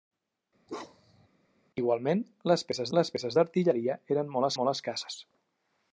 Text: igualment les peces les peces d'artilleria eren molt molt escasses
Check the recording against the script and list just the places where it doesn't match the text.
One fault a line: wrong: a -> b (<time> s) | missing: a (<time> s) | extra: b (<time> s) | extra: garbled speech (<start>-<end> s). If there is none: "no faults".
no faults